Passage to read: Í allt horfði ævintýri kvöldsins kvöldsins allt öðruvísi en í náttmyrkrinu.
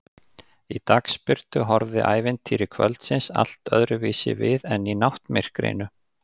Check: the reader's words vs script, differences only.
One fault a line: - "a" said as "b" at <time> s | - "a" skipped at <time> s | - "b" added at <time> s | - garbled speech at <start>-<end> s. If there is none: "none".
- "allt" said as "dagsbirtu" at 0.9 s
- "kvöldsins" skipped at 3.3 s
- "við" added at 4.4 s